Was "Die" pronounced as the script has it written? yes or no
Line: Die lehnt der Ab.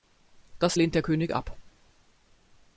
no